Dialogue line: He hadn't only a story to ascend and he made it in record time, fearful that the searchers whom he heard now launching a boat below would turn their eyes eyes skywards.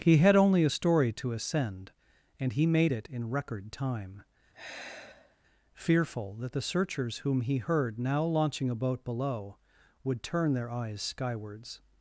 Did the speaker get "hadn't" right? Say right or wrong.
wrong